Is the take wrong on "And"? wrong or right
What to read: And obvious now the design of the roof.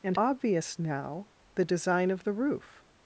right